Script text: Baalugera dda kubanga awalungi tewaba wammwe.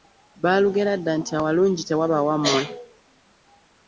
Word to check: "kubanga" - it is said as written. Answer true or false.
false